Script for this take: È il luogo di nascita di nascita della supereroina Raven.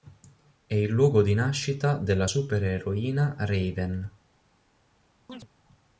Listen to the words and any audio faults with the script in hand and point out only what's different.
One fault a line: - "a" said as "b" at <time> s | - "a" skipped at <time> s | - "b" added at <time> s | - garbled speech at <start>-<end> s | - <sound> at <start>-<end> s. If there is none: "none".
- "di nascita" skipped at 2.0 s
- chirp at 5.3-5.5 s